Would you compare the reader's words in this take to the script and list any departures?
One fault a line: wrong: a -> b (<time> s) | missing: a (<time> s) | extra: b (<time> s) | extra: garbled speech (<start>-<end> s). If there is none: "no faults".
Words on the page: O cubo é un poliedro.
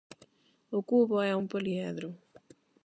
no faults